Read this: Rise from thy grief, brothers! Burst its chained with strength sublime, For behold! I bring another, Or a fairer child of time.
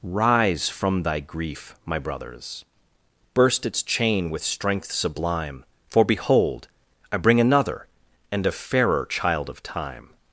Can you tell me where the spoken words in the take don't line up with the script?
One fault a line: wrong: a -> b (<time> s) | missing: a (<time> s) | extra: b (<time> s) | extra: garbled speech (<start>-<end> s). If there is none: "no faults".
extra: my (1.9 s)
wrong: chained -> chain (3.8 s)
wrong: Or -> And (8.3 s)